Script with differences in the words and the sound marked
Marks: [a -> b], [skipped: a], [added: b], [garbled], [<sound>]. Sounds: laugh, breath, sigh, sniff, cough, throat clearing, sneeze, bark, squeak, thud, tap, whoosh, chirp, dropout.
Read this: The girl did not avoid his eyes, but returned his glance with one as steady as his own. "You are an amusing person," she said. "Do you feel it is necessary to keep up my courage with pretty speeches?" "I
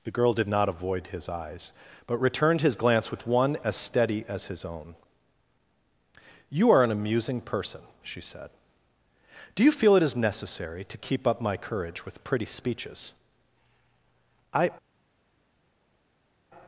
The girl did not avoid his eyes, but returned his glance with one as steady as his own. "You are an amusing person," she said. "Do you feel it is necessary to keep up my courage with pretty speeches?" "I